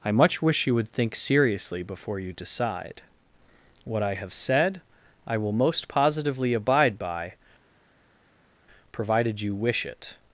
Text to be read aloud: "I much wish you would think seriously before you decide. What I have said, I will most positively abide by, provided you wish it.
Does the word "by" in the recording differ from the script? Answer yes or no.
no